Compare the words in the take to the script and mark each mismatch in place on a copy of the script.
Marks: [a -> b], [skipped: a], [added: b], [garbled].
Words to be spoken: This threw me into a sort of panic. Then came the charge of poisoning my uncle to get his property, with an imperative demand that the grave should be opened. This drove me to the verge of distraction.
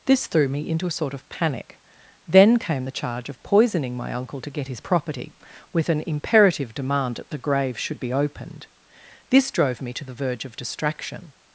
This threw me into a sort of panic. Then came the charge of poisoning my uncle to get his property, with an imperative demand that the grave should be opened. This drove me to the verge of distraction.